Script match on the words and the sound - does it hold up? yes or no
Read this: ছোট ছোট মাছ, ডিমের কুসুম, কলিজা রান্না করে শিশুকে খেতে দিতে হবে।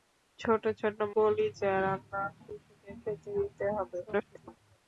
no